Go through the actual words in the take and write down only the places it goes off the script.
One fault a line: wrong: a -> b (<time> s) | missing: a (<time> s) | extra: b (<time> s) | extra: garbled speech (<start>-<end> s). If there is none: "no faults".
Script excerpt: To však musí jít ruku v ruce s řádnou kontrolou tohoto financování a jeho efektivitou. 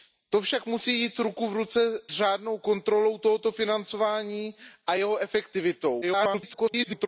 missing: s (2.0 s)
extra: garbled speech (6.0-7.1 s)